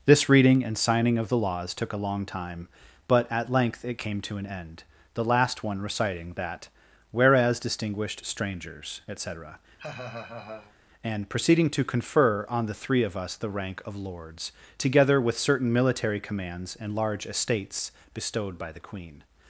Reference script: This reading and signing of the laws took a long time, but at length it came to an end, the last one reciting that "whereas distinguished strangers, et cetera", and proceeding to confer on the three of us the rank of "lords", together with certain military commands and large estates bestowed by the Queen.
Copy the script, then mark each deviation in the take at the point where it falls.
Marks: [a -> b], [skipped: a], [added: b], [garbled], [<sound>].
This reading and signing of the laws took a long time, but at length it came to an end, the last one reciting that "whereas distinguished strangers, et cetera", [laugh] and proceeding to confer on the three of us the rank of "lords", together with certain military commands and large estates bestowed by the Queen.